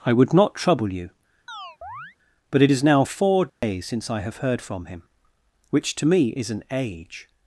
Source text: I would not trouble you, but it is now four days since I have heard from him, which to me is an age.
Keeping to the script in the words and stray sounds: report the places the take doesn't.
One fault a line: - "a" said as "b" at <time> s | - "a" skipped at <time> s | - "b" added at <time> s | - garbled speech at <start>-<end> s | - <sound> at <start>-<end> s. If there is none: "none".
- chirp at 1.5-2.2 s
- dropout at 3.5-3.6 s